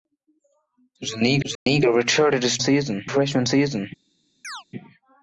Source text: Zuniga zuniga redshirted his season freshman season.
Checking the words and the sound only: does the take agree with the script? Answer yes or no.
no